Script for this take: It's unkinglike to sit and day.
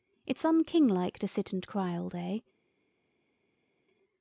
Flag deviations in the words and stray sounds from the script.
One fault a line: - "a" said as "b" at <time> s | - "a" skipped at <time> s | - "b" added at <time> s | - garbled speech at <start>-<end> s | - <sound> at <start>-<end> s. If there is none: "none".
- "cry all" added at 1.7 s